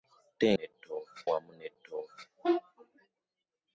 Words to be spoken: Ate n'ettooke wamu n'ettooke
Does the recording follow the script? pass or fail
pass